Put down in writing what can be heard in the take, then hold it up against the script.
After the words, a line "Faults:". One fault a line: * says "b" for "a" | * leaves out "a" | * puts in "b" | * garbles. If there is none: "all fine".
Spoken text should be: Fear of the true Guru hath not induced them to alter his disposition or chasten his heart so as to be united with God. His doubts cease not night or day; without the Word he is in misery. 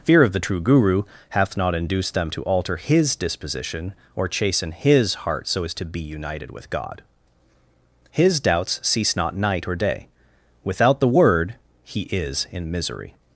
Fear of the true Guru hath not induced them to alter his disposition or chasten his heart so as to be united with God. His doubts cease not night or day; without the Word he is in misery.
Faults:
all fine